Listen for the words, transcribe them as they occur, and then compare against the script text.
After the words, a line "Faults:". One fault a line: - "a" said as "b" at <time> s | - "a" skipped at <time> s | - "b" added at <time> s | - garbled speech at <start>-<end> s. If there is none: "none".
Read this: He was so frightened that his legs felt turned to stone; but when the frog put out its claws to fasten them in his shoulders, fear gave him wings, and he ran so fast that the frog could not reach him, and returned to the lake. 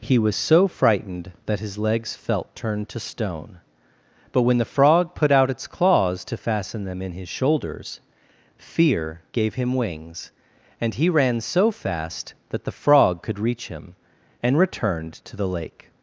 He was so frightened that his legs felt turned to stone; but when the frog put out its claws to fasten them in his shoulders, fear gave him wings, and he ran so fast that the frog could reach him, and returned to the lake.
Faults:
- "not" skipped at 13.4 s